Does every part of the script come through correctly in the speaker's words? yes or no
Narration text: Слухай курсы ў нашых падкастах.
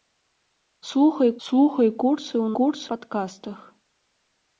no